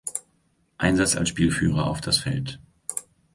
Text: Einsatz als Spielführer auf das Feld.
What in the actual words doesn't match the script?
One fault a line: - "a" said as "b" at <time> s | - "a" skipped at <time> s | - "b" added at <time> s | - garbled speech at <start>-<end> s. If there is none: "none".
none